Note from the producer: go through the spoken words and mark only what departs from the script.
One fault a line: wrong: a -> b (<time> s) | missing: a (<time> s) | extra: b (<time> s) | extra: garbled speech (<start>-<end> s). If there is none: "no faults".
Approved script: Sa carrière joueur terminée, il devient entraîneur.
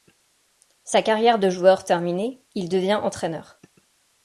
extra: de (1.4 s)